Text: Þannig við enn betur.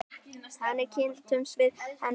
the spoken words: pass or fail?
fail